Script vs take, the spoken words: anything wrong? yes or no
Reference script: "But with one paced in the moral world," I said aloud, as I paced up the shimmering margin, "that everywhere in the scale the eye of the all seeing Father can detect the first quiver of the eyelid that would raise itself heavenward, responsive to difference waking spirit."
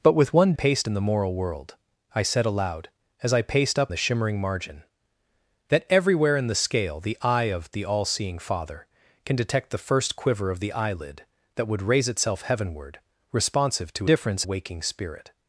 no